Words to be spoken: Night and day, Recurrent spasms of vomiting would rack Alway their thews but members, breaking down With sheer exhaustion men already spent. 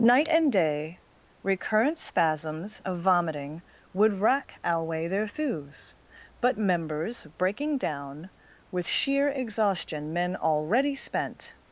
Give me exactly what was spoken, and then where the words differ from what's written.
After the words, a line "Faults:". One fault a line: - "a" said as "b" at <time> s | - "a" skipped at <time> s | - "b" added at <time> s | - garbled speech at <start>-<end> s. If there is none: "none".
Night and day, Recurrent spasms of vomiting would rack Alway their thews but members, breaking down With sheer exhaustion men already spent.
Faults:
none